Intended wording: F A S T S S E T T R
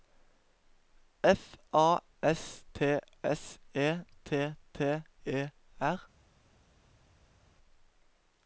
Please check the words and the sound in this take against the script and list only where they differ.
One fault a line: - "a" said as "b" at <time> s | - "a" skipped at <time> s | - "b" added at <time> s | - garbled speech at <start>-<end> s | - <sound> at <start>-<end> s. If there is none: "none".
- "S" skipped at 3.6 s
- "E" added at 5.2 s